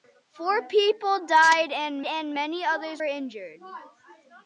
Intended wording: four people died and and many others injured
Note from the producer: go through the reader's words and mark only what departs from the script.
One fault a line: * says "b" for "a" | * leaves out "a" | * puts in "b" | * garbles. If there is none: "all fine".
all fine